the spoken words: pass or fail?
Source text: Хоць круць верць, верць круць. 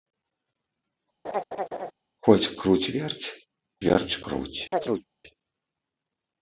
pass